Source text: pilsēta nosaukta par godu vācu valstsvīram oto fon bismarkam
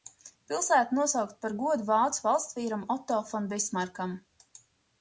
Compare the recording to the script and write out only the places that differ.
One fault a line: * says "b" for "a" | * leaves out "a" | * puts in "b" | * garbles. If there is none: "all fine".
all fine